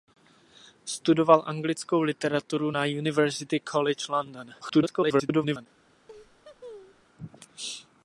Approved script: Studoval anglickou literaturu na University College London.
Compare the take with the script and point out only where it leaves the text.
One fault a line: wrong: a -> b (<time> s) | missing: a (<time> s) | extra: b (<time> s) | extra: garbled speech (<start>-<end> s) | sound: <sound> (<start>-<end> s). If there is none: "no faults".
extra: garbled speech (4.6-5.7 s)
sound: laugh (6.1-7.0 s)